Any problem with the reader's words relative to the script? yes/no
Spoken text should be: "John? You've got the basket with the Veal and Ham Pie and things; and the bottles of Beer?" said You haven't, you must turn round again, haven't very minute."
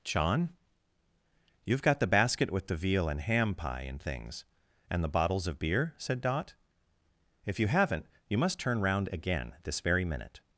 yes